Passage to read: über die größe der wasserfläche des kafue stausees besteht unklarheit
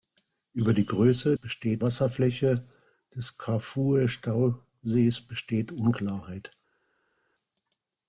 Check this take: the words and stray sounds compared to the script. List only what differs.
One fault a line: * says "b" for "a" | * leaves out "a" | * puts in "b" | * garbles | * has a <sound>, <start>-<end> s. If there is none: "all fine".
* says "besteht" for "der"